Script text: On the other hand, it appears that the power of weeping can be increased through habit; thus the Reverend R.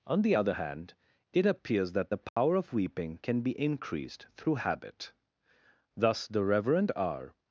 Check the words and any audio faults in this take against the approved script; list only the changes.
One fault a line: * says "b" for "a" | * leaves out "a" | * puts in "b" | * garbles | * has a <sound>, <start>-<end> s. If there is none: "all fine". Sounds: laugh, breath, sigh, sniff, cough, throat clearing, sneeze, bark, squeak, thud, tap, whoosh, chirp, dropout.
* has a dropout, 2.3-2.4 s